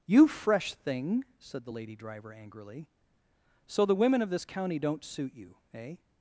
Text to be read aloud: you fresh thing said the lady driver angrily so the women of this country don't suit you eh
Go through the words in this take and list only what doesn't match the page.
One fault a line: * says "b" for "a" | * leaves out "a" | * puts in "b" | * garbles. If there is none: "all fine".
* says "county" for "country"